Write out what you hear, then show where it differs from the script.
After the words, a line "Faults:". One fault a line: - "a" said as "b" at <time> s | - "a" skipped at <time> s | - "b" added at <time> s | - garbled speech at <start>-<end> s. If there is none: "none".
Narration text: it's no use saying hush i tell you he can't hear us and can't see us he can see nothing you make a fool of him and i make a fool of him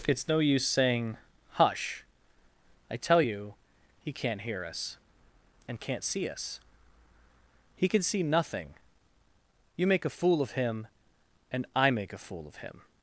it's no use saying hush i tell you he can't hear us and can't see us he can see nothing you make a fool of him and i make a fool of him
Faults:
none